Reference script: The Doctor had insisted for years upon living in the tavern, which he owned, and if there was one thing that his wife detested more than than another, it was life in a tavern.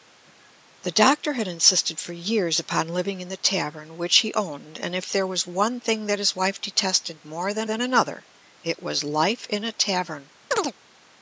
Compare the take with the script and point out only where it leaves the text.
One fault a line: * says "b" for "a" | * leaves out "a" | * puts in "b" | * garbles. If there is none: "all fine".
all fine